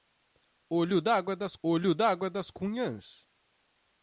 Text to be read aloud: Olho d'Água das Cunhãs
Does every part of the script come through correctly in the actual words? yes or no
no